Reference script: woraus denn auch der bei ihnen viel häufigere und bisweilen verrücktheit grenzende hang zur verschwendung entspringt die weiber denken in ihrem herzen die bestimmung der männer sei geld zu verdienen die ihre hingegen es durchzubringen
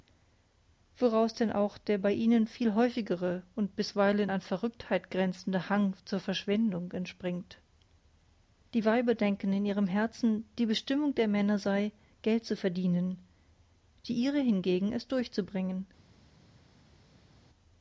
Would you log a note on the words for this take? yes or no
yes